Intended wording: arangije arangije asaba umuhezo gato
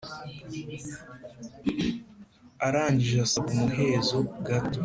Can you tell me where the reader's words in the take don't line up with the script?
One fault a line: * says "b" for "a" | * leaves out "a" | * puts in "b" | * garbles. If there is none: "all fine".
* leaves out "arangije"